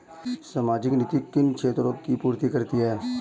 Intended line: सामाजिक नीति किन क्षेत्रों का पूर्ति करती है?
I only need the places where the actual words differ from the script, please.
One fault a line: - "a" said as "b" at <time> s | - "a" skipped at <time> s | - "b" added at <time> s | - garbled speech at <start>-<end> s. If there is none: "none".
- "का" said as "की" at 1.9 s